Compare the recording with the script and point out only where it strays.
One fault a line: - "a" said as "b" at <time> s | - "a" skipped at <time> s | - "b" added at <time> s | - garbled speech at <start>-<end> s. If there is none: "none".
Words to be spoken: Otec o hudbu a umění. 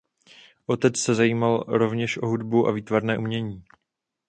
- "se zajímal rovněž" added at 1.0 s
- "výtvarné" added at 2.7 s